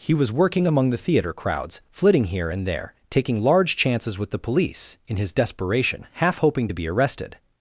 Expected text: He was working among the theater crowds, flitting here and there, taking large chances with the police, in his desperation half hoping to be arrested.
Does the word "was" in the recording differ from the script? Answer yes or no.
no